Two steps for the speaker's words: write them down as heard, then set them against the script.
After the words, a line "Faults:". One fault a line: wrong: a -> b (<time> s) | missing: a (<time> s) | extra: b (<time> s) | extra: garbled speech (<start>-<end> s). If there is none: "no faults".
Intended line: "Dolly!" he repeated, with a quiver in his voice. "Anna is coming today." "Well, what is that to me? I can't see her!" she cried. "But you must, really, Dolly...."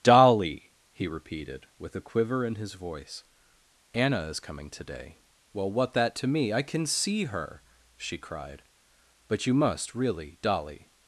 "Dolly!" he repeated, with a quiver in his voice. "Anna is coming today." "Well, what that to me? I can see her!" she cried. "But you must, really, Dolly...."
Faults:
missing: is (5.9 s)
wrong: can't -> can (6.6 s)